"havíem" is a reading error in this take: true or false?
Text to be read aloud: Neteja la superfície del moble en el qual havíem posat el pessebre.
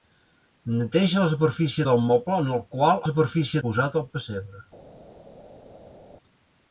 true